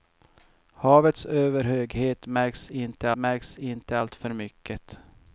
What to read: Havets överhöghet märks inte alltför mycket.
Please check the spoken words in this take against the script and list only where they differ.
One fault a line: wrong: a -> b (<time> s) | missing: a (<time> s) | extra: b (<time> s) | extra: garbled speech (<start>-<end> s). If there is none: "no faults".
extra: märks inte (3.1 s)